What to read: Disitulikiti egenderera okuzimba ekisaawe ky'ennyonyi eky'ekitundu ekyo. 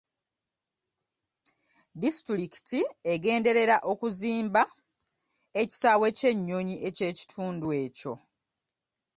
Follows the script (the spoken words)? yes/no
yes